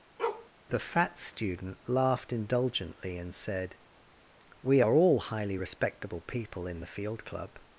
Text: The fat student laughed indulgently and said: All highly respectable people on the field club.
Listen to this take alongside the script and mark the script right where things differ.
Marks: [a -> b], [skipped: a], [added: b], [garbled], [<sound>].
[bark] The fat student laughed indulgently and said: [added: We are] All highly respectable people [on -> in] the field club.